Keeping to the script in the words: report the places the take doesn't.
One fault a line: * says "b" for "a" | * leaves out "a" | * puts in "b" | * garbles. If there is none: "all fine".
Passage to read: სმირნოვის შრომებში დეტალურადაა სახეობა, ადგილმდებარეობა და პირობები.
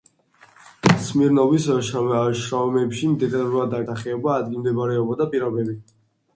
all fine